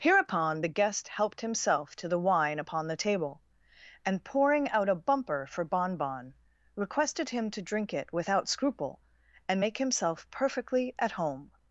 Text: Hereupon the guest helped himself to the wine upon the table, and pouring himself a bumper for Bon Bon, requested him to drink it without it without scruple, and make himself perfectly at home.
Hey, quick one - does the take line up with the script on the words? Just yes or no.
no